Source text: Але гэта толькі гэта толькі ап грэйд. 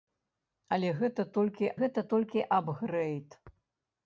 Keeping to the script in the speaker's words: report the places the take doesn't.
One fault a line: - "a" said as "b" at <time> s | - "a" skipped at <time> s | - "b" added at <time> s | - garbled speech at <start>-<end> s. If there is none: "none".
none